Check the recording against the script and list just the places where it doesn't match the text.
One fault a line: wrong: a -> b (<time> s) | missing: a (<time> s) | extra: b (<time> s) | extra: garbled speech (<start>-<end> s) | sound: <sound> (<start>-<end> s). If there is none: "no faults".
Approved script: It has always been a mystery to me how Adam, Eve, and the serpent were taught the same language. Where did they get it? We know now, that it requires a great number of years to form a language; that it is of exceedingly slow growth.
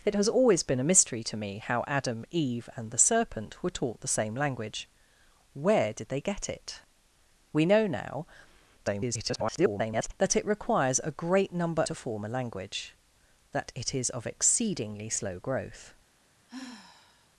extra: garbled speech (8.8-10.1 s)
missing: of years (11.8 s)
sound: sigh (16.5-17.3 s)